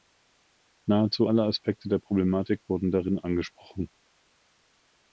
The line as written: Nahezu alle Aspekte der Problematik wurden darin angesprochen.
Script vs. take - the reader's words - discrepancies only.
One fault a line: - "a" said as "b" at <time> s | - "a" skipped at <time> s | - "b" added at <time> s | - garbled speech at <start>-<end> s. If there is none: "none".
none